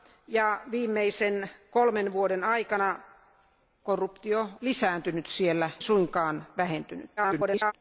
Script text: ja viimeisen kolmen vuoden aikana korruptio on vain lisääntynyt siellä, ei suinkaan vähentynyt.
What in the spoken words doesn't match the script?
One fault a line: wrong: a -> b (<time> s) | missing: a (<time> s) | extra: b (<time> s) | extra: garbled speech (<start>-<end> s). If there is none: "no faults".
missing: on vain (4.5 s)
missing: ei (5.7 s)
extra: garbled speech (7.2-7.7 s)